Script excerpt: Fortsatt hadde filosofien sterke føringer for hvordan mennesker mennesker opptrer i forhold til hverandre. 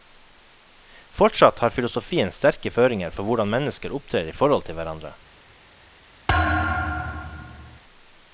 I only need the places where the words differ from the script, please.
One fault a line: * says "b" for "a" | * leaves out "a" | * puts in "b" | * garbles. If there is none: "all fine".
* says "har" for "hadde"
* leaves out "mennesker"